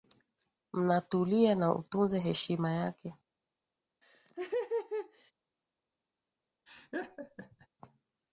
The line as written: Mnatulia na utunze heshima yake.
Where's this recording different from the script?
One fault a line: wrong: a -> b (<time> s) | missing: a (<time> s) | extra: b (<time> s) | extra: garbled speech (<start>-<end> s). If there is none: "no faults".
no faults